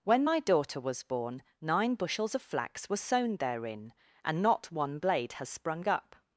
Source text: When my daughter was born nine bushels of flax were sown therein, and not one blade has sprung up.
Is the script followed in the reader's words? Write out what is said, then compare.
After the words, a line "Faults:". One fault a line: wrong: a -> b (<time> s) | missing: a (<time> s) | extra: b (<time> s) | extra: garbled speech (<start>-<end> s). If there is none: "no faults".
When my daughter was born nine bushels of flax were sown therein, and not one blade has sprung up.
Faults:
no faults